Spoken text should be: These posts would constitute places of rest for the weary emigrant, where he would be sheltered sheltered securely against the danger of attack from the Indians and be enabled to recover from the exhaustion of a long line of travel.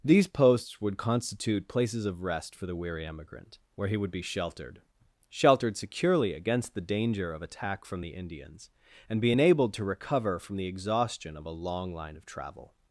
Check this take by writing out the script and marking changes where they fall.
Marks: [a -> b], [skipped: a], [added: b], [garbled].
These posts would constitute places of rest for the weary emigrant, where he would be sheltered sheltered securely against the danger of attack from the Indians and be enabled to recover from the exhaustion of a long line of travel.